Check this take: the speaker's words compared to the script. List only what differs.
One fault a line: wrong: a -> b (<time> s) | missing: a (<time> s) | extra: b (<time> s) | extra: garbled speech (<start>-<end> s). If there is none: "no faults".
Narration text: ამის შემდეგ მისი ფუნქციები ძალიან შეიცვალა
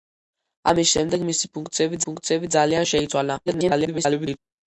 extra: ფუნქციები (2.1 s)
extra: garbled speech (3.5-4.4 s)